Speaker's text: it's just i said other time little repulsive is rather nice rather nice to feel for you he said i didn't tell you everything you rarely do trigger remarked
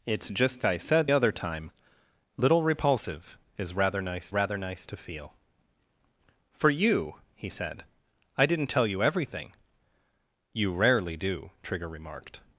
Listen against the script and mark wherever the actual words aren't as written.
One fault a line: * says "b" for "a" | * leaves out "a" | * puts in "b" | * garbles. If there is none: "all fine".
all fine